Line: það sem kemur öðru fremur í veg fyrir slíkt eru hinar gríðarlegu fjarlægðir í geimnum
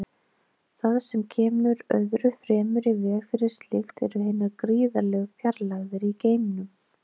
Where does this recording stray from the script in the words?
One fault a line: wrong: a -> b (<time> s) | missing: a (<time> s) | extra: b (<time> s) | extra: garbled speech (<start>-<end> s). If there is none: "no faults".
no faults